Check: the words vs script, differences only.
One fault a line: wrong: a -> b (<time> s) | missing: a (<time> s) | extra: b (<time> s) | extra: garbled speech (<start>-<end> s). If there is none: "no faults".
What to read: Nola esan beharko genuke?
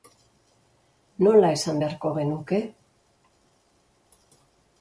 no faults